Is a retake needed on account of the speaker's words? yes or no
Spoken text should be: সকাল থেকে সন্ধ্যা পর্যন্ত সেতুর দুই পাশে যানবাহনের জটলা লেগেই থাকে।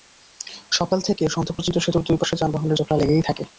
no